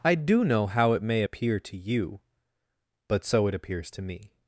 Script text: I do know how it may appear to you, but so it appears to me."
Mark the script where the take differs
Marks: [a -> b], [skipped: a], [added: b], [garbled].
I do know how it may appear to you, but so it appears to me."